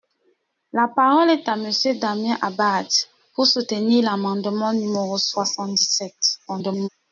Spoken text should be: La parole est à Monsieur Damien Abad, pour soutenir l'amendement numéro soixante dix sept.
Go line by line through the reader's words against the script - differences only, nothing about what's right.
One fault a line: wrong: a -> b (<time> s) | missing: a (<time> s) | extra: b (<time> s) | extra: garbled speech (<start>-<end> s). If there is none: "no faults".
extra: garbled speech (6.5-6.9 s)